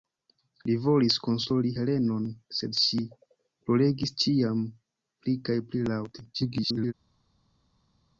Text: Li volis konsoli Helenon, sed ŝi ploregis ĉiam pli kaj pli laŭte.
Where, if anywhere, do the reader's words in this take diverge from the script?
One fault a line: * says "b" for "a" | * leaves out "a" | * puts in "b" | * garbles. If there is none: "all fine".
* garbles